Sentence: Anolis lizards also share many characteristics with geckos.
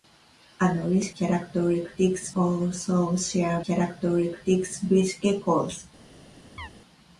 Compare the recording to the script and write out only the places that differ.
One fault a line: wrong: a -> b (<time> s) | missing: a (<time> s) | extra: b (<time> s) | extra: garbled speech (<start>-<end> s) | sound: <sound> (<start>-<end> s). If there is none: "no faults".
wrong: lizards -> characteristics (1.2 s)
missing: many (3.6 s)
sound: chirp (6.6-6.7 s)